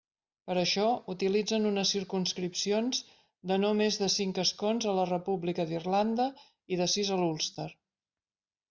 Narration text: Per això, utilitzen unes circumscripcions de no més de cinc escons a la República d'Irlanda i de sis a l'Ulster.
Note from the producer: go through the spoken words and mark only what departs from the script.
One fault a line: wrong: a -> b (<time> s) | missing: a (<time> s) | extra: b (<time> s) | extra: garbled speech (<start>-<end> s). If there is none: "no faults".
no faults